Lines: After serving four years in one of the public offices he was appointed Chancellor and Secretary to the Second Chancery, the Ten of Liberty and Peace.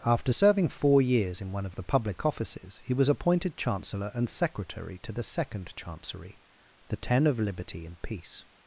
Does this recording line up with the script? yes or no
yes